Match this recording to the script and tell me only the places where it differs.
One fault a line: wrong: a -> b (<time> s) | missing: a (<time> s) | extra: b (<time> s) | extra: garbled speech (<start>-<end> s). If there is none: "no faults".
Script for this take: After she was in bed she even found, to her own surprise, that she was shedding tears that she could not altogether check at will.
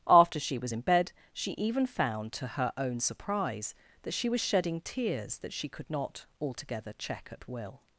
no faults